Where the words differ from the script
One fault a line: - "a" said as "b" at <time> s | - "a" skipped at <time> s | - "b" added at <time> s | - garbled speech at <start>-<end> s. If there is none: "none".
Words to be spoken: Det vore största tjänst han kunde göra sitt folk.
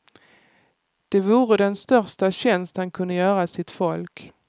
- "den" added at 1.6 s